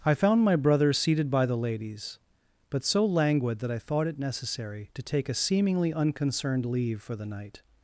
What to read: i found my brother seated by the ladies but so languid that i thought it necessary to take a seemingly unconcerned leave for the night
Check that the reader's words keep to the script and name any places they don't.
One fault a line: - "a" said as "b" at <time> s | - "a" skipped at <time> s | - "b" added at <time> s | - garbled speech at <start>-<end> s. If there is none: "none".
none